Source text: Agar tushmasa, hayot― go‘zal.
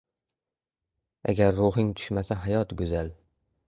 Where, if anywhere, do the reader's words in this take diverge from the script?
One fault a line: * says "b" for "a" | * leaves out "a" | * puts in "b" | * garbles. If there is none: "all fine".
* puts in "ruhing"